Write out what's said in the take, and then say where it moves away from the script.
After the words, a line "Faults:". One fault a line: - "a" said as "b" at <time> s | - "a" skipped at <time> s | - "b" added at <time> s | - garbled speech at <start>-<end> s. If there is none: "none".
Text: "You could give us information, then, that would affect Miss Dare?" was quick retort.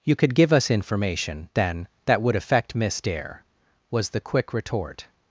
"You could give us information, then, that would affect Miss Dare?" was the quick retort.
Faults:
- "the" added at 4.1 s